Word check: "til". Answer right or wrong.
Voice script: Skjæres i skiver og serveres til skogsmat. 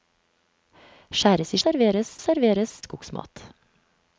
wrong